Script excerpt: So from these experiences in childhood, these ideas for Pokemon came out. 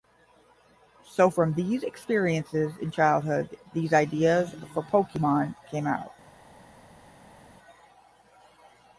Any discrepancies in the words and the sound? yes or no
no